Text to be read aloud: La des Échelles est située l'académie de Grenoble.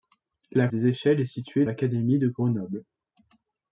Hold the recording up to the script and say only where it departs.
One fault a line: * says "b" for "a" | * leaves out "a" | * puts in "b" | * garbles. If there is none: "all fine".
all fine